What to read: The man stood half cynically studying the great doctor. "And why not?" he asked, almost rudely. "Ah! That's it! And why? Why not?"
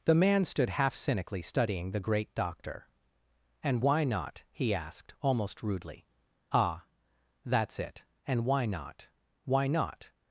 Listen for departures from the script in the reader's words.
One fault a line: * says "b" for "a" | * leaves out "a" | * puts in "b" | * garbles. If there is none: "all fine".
* puts in "not"